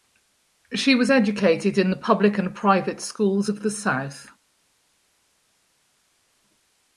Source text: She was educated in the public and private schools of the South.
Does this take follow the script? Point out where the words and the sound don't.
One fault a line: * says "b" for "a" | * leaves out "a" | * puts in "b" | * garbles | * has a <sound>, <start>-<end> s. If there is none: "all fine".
all fine